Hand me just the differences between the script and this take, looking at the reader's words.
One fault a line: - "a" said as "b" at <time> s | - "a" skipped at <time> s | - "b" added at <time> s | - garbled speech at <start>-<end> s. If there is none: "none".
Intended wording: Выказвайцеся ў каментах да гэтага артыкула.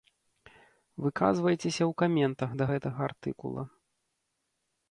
none